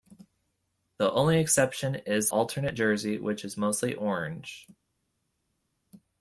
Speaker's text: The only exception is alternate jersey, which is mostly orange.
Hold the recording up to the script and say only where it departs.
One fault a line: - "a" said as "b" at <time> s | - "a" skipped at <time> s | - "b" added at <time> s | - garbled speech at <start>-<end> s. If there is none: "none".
none